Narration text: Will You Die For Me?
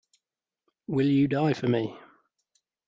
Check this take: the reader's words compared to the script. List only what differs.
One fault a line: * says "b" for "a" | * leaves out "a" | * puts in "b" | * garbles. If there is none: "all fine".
all fine